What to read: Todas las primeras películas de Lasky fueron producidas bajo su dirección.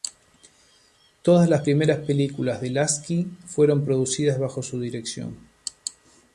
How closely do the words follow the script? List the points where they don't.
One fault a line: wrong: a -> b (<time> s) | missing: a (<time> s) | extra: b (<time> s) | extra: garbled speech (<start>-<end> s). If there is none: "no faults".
no faults